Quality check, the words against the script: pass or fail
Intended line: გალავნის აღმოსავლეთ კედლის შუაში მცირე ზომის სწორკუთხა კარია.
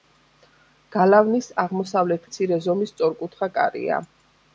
fail